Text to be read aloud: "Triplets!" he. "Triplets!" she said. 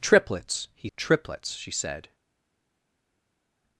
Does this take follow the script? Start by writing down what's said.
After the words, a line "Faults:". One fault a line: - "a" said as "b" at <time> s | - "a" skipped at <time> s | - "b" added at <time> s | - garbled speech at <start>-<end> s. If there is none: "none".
"Triplets!" he. "Triplets!" she said.
Faults:
none